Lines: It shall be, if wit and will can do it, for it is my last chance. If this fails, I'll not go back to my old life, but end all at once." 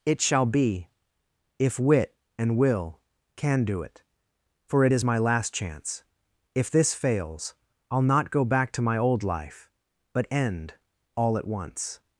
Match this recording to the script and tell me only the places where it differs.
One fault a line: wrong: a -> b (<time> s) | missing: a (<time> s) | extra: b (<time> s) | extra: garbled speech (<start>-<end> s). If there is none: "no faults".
no faults